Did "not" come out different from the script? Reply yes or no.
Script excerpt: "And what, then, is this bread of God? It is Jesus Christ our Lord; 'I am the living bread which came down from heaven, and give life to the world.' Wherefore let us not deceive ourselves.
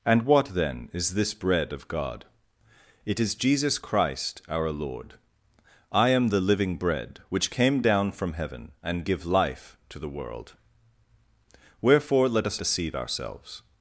yes